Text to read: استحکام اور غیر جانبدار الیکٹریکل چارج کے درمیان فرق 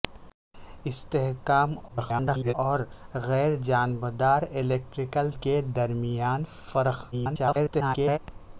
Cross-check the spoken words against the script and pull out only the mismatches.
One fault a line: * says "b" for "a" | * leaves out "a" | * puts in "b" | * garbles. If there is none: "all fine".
* garbles
* leaves out "چارج"
* garbles